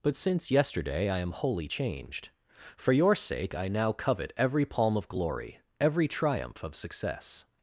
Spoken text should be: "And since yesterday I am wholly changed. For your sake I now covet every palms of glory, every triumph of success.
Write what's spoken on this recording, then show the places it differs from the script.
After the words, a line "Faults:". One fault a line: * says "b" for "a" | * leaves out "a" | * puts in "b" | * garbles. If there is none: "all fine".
"But since yesterday I am wholly changed. For your sake I now covet every palm of glory, every triumph of success.
Faults:
* says "But" for "And"
* says "palm" for "palms"